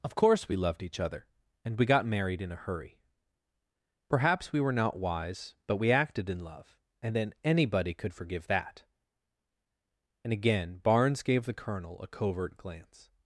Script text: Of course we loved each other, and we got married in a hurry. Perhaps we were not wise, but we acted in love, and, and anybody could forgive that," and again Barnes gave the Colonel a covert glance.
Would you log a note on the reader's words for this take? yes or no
yes